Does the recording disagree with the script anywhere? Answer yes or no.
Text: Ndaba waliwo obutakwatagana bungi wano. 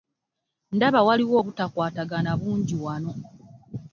no